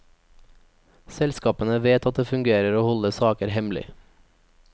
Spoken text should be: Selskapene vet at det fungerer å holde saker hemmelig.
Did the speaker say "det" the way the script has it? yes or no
yes